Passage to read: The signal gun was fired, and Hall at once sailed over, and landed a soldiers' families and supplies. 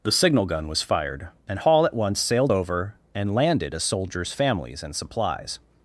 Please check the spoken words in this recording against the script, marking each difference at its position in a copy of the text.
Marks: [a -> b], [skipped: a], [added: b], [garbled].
The signal gun was fired, and Hall at once sailed over, and landed a soldiers' families and supplies.